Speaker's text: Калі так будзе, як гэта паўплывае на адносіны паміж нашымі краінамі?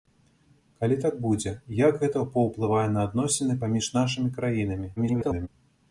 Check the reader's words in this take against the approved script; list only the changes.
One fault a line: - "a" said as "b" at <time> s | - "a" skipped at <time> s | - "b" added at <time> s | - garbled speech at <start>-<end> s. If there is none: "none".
- garbled speech at 5.0-5.5 s